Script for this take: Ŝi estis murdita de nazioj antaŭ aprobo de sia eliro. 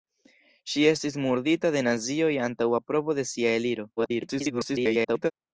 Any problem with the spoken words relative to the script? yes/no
yes